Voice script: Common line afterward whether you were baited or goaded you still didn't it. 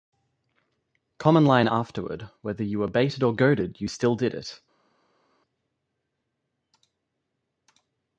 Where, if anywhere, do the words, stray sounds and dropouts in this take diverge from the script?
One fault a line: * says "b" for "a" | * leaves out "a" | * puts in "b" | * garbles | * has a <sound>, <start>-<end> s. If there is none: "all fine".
* says "did" for "didn't"